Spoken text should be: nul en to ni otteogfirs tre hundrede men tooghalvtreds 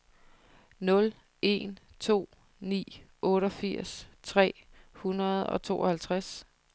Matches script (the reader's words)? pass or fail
fail